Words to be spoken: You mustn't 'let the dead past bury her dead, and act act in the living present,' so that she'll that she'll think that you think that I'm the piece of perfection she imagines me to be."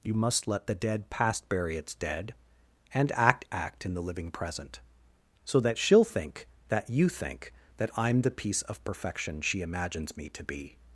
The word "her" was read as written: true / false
false